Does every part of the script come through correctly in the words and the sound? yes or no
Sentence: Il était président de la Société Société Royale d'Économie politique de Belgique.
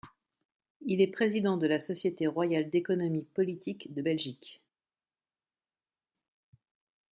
no